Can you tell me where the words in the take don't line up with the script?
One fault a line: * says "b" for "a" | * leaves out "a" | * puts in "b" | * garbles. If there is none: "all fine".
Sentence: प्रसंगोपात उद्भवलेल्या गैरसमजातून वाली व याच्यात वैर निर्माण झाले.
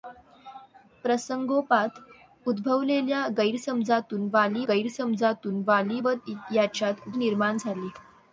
* puts in "गैरसमजातून वाली"
* leaves out "वैर"